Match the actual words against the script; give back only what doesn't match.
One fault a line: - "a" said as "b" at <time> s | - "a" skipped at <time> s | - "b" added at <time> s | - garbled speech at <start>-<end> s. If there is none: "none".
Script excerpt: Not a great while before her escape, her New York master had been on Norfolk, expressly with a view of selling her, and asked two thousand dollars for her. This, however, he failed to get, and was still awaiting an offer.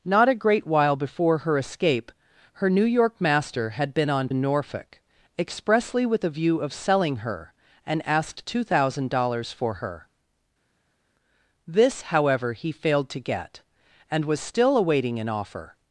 none